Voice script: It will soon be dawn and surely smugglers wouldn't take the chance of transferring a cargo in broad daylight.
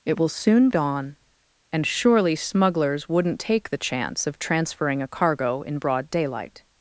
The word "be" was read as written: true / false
false